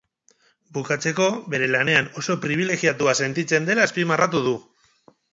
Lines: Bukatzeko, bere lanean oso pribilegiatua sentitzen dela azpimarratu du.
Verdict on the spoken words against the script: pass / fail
pass